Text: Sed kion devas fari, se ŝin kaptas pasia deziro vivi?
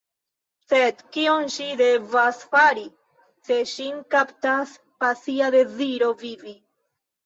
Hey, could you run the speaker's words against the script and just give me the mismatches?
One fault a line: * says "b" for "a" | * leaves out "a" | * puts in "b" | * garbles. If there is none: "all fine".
* puts in "ŝi"